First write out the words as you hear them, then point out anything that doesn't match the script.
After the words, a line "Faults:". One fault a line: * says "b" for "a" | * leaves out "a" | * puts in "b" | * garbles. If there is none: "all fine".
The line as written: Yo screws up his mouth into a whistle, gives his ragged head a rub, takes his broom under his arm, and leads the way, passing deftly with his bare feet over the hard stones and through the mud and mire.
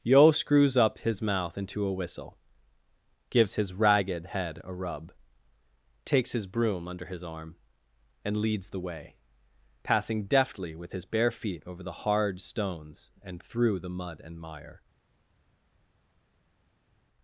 Yo screws up his mouth into a whistle, gives his ragged head a rub, takes his broom under his arm, and leads the way, passing deftly with his bare feet over the hard stones and through the mud and mire.
Faults:
all fine